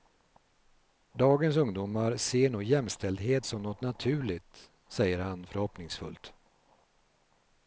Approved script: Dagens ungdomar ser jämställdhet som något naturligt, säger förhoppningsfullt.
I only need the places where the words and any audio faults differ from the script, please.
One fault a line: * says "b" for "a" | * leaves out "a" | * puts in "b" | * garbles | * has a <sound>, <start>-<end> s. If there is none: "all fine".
* puts in "nog"
* puts in "han"